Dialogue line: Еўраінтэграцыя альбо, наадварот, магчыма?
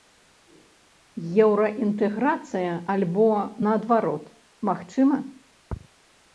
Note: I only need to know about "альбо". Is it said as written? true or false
true